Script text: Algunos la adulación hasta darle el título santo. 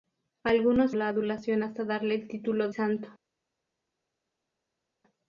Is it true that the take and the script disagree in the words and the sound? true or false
false